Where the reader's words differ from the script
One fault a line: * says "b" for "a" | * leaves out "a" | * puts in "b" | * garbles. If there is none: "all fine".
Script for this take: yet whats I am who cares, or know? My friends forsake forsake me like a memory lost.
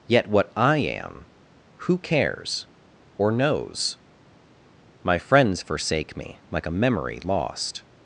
* says "what" for "whats"
* says "knows" for "know"
* leaves out "forsake"